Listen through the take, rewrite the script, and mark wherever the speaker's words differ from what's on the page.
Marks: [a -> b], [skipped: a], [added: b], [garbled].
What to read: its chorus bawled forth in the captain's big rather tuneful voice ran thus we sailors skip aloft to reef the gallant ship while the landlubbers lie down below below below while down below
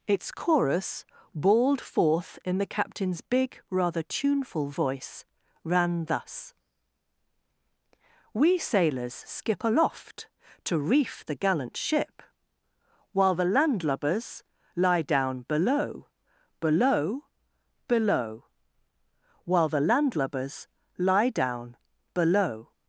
its chorus bawled forth in the captain's big rather tuneful voice ran thus we sailors skip aloft to reef the gallant ship while the landlubbers lie down below below below while [added: the landlubbers lie] down below